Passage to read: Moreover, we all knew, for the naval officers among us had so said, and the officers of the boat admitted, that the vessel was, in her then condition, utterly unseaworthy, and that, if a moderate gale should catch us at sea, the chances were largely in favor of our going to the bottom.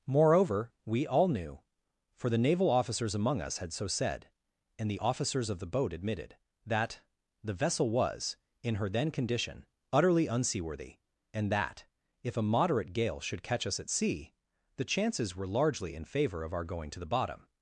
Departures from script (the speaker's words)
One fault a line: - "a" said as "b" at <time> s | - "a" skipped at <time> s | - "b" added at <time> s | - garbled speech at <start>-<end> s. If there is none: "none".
none